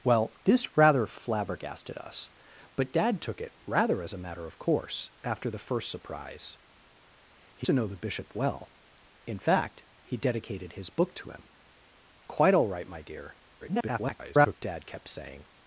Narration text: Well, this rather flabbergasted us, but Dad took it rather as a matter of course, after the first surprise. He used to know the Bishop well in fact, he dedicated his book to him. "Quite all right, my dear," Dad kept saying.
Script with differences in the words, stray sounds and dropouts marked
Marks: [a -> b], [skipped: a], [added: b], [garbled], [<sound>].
Well, this rather flabbergasted us, but Dad took it rather as a matter of course, after the first surprise. He [skipped: used] to know the Bishop well in fact, he dedicated his book to him. "Quite all right, my dear," [garbled] Dad kept saying.